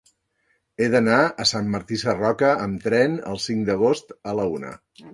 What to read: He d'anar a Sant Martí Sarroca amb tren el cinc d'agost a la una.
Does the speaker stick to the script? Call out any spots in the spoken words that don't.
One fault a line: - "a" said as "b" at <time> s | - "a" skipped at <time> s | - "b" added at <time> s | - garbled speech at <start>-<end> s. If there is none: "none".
none